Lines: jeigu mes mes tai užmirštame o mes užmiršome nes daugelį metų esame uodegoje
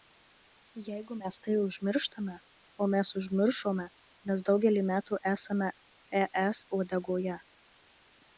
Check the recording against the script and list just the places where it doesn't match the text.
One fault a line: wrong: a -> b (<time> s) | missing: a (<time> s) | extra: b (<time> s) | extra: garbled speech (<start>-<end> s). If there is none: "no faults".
missing: mes (1.4 s)
extra: es (6.5 s)